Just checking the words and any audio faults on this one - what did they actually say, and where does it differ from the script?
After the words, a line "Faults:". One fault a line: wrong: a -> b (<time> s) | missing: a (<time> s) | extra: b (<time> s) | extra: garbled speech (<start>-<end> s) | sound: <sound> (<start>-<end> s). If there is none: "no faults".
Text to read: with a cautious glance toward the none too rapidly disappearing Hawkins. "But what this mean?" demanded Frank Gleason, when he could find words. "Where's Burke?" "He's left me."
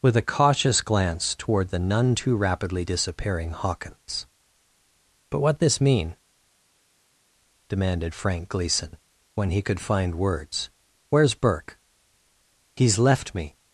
with a cautious glance toward the none too rapidly disappearing Hawkins. "But what this mean?" demanded Frank Gleason, when he could find words. "Where's Burke?" "He's left me."
Faults:
no faults